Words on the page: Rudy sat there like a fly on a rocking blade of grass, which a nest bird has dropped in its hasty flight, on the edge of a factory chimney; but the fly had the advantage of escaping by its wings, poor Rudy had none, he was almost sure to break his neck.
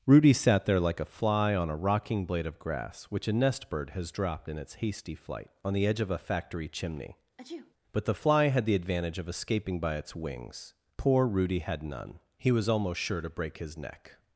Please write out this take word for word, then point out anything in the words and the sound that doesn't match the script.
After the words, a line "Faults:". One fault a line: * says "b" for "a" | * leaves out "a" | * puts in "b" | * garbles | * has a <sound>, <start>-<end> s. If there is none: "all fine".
Rudy sat there like a fly on a rocking blade of grass, which a nest bird has dropped in its hasty flight, on the edge of a factory chimney; but the fly had the advantage of escaping by its wings, poor Rudy had none, he was almost sure to break his neck.
Faults:
* has a sneeze, 7.4-7.7 s